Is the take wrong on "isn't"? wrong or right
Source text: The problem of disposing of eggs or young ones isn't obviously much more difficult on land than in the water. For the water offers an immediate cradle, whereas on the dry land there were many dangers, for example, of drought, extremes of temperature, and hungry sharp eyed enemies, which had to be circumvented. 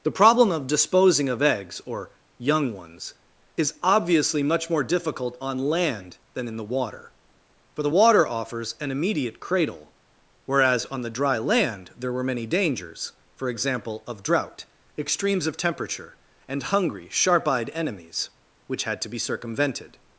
wrong